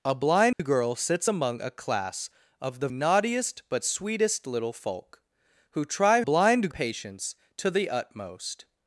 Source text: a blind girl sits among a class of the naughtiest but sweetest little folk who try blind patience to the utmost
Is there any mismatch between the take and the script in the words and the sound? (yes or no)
yes